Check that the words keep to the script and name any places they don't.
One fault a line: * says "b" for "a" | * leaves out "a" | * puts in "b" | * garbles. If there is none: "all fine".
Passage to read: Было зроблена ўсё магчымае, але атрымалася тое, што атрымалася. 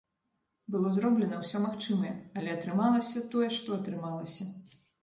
all fine